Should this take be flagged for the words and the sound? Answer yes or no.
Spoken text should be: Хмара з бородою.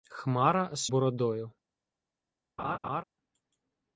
yes